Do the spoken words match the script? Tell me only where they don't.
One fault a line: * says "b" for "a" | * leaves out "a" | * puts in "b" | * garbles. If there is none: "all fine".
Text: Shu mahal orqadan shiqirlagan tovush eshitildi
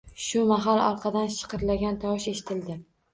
all fine